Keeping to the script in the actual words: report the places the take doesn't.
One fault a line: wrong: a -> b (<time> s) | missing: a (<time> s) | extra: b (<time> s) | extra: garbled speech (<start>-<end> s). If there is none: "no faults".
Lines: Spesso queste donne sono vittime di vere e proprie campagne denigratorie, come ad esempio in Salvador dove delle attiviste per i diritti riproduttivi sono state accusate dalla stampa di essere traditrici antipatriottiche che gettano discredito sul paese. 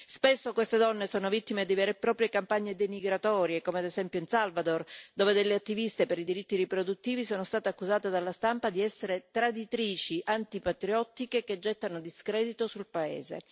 no faults